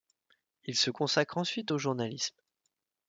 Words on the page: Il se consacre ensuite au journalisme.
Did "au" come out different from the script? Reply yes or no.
no